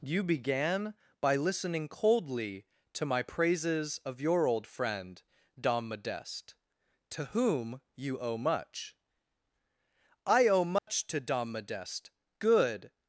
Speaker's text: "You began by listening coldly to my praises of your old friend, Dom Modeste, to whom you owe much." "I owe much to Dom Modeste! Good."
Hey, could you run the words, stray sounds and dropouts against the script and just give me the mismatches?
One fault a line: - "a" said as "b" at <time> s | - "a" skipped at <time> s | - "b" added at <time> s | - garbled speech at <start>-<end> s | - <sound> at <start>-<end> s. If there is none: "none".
- dropout at 10.8-10.9 s